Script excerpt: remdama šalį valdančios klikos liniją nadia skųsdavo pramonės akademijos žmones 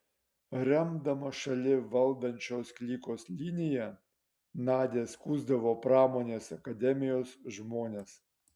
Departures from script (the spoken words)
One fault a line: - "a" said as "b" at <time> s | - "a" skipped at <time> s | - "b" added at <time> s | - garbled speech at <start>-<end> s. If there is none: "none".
none